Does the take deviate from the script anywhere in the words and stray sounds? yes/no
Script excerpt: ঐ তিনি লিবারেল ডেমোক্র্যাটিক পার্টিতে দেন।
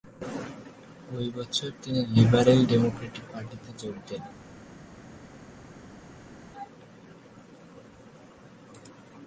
yes